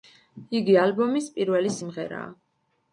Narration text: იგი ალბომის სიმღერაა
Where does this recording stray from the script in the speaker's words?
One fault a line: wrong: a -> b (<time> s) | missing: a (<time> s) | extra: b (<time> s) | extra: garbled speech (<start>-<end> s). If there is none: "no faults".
extra: პირველი (1.4 s)